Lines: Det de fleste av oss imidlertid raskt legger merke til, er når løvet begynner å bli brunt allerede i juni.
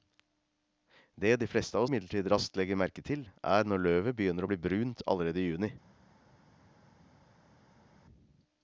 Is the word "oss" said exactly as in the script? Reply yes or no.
no